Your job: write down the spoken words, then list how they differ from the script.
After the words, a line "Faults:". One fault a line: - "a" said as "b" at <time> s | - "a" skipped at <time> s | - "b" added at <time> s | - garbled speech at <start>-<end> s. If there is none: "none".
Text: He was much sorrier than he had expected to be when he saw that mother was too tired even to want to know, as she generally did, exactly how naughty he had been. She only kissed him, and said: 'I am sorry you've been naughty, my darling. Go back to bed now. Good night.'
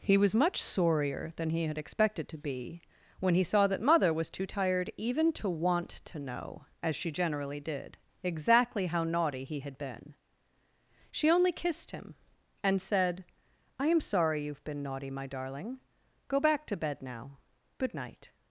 He was much sorrier than he had expected to be when he saw that mother was too tired even to want to know, as she generally did, exactly how naughty he had been. She only kissed him, and said: 'I am sorry you've been naughty, my darling. Go back to bed now. Good night.'
Faults:
none